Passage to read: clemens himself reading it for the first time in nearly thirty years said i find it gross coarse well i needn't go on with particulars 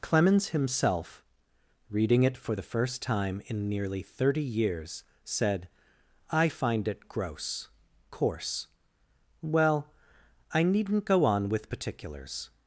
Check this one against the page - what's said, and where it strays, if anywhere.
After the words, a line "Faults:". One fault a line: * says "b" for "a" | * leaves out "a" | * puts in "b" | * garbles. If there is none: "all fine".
clemens himself reading it for the first time in nearly thirty years said i find it gross coarse well i needn't go on with particulars
Faults:
all fine